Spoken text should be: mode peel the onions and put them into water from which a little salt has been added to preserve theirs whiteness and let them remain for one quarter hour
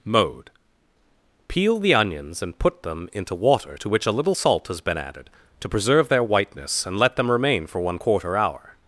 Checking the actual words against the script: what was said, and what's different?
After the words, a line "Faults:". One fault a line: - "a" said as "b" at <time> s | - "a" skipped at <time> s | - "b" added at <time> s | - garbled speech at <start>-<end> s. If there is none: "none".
mode peel the onions and put them into water to which a little salt has been added to preserve their whiteness and let them remain for one quarter hour
Faults:
- "from" said as "to" at 3.7 s
- "theirs" said as "their" at 6.1 s